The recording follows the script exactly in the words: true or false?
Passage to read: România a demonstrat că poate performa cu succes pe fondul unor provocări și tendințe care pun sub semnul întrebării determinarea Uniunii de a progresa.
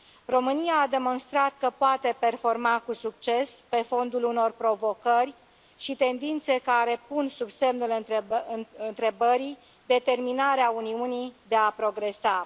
true